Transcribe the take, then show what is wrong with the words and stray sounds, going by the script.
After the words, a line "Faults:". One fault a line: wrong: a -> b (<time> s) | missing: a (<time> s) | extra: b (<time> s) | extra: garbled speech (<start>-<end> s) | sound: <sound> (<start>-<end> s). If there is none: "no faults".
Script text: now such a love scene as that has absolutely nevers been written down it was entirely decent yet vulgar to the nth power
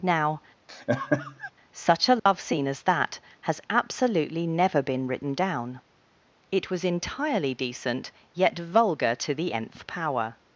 now such a love scene as that has absolutely never been written down it was entirely decent yet vulgar to the nth power
Faults:
sound: laugh (0.7-1.5 s)
sound: dropout (2.2-2.3 s)
wrong: nevers -> never (4.5 s)